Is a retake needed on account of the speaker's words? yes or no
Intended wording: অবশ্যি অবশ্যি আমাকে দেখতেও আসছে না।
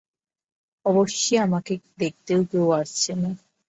yes